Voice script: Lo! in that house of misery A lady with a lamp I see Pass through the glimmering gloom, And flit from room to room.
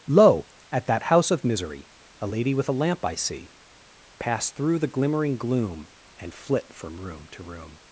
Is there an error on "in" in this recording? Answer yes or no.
yes